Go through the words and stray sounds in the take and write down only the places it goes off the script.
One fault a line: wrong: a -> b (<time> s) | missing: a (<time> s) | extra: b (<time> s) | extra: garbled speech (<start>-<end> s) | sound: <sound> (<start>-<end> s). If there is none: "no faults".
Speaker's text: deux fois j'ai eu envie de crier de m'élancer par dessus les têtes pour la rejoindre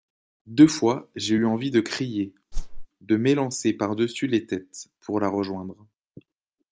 sound: whoosh (2.5-2.9 s)